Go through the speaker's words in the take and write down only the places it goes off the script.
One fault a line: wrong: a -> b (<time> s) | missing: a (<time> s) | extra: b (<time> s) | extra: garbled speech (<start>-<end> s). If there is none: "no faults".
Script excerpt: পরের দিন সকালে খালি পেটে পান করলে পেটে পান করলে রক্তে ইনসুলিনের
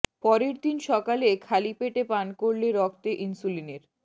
missing: পেটে পান করলে (2.7 s)